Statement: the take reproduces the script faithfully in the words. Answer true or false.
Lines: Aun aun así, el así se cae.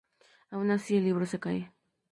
false